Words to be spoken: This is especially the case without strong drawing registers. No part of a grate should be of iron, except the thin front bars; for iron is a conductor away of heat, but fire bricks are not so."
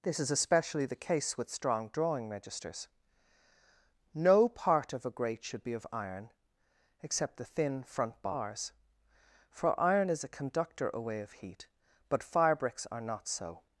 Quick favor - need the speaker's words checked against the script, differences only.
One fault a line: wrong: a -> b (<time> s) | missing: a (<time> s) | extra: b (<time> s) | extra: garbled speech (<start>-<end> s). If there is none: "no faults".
wrong: without -> with (1.4 s)